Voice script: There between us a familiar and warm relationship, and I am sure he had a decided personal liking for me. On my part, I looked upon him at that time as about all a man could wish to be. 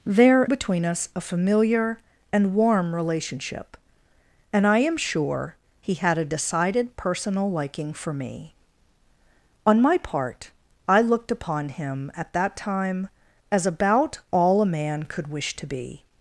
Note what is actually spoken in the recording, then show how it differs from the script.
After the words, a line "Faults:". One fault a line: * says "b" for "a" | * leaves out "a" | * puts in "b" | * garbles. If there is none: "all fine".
There between us a familiar and warm relationship, and I am sure he had a decided personal liking for me. On my part, I looked upon him at that time as about all a man could wish to be.
Faults:
all fine